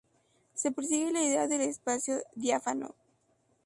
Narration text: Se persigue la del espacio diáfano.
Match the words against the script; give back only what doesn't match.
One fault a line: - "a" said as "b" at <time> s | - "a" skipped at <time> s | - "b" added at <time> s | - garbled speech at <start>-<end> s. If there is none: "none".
- "idea" added at 1.2 s